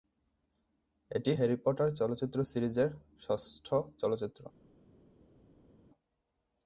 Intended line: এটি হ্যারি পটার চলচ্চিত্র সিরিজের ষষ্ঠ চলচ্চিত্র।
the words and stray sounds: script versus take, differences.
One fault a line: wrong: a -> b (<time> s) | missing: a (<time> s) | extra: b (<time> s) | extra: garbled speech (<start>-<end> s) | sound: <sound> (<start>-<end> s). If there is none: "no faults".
no faults